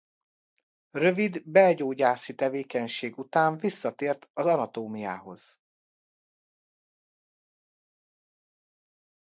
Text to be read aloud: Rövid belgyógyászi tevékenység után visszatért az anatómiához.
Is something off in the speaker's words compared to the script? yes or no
no